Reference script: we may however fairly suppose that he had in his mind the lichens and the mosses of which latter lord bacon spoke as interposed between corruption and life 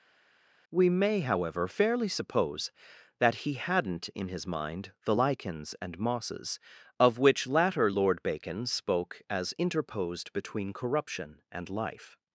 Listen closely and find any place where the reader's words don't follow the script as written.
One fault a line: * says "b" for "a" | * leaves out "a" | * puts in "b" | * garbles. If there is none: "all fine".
* says "hadn't" for "had"
* leaves out "the"